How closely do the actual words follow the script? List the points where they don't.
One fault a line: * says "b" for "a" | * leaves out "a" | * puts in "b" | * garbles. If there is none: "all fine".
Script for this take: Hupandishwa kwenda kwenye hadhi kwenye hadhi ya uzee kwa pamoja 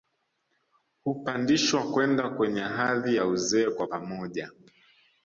* leaves out "kwenye hadhi"